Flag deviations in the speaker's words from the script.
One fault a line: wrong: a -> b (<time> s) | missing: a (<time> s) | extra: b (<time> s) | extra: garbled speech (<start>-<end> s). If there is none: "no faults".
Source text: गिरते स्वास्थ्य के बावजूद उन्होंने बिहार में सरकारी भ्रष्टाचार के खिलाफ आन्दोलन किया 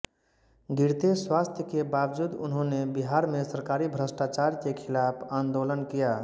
no faults